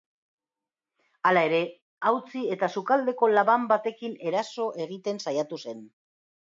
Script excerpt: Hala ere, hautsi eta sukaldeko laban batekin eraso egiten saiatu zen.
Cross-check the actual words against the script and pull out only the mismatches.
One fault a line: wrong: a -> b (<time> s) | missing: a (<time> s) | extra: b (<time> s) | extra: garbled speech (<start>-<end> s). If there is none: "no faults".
no faults